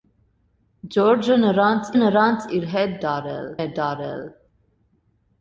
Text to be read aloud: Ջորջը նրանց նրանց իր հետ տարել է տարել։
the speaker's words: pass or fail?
pass